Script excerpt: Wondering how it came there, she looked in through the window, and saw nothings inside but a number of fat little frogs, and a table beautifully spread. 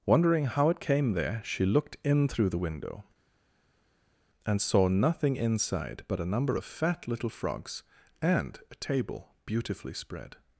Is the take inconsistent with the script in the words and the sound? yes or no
yes